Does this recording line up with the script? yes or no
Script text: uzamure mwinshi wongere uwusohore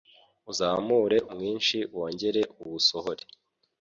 yes